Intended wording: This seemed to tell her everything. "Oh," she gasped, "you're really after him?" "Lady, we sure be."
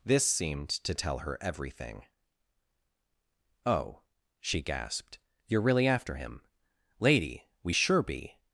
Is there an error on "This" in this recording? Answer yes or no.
no